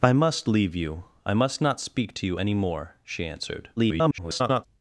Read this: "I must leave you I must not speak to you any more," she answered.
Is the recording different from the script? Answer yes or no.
yes